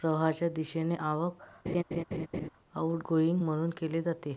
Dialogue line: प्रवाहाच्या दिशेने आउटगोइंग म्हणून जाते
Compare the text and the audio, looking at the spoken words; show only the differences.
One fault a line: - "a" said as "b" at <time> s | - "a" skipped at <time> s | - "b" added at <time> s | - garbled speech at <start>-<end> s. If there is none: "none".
- "आवक" added at 0.9 s
- "केले" added at 3.7 s